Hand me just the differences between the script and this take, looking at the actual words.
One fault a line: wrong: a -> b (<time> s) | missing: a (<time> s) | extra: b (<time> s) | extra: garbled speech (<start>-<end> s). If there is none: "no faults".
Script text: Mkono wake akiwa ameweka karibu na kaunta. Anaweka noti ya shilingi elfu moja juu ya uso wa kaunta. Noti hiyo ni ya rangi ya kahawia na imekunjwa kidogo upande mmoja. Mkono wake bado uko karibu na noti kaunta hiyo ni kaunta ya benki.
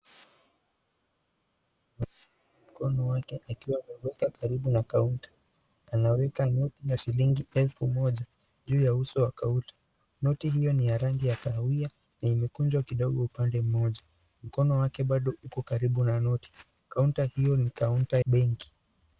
missing: ya (18.2 s)